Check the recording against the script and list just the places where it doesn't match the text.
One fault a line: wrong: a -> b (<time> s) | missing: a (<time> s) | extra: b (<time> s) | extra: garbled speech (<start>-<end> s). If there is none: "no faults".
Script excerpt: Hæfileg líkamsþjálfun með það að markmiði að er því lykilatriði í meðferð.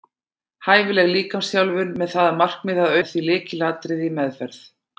no faults